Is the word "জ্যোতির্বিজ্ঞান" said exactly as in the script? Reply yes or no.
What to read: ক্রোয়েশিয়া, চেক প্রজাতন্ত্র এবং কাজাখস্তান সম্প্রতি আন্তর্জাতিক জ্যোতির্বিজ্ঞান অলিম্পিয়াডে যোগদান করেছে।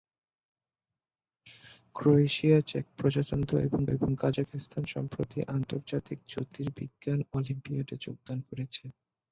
yes